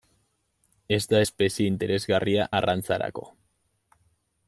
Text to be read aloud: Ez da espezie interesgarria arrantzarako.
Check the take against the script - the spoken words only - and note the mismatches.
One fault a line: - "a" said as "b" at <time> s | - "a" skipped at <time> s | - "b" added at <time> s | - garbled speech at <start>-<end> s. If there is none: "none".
none